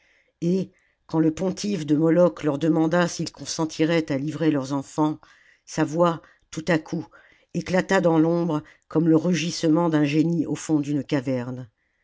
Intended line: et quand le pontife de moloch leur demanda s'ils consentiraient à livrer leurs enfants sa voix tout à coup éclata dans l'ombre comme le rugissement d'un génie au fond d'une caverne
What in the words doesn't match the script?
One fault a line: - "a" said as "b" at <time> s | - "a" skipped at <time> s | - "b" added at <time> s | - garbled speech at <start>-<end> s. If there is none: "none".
none